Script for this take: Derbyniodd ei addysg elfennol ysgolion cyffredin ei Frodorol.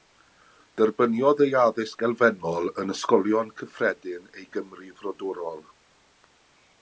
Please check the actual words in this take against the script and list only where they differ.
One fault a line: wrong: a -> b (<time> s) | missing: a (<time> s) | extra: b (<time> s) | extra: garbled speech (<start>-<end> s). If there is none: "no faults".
extra: yn (2.8 s)
extra: Gymru (4.6 s)